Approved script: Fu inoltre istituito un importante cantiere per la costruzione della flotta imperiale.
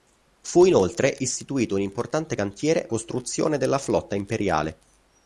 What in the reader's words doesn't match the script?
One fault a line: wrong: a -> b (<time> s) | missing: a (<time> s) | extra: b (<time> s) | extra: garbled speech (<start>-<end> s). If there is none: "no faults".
missing: per la (2.9 s)